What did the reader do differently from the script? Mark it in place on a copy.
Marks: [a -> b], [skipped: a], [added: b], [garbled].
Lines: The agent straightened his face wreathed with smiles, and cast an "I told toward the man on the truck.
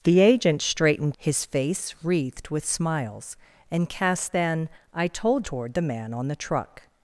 The agent straightened his face wreathed with smiles, and cast an "I told toward the man on the truck.